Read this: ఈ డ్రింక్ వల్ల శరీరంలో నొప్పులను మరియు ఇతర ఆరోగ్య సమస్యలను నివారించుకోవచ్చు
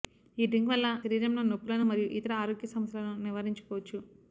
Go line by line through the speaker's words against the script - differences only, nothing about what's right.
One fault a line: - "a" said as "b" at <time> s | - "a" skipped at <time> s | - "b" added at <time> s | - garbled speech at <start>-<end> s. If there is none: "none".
none